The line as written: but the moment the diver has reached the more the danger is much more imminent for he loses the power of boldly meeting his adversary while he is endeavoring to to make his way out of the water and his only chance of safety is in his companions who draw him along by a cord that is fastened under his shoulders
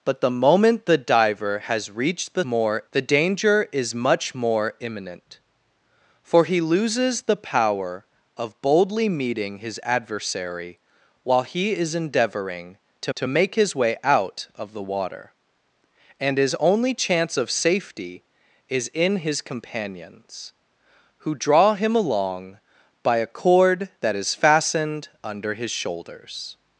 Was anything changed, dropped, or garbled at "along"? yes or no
no